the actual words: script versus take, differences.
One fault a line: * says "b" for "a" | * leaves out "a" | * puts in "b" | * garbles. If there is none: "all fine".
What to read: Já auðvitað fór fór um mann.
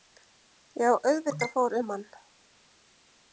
* leaves out "fór"